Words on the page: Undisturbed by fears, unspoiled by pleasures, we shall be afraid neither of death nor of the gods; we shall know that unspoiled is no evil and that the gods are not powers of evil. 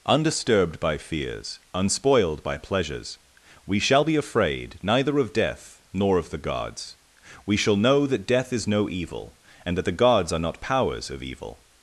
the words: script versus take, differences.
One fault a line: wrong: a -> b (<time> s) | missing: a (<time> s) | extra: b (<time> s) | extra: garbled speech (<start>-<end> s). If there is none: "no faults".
wrong: unspoiled -> death (8.2 s)